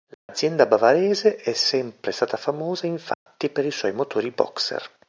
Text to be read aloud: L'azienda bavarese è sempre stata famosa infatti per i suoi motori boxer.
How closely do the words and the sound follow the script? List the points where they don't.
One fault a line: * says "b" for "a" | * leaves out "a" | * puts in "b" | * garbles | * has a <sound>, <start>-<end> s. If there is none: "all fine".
* has a dropout, 0.1-0.3 s
* has a dropout, 3.1-3.3 s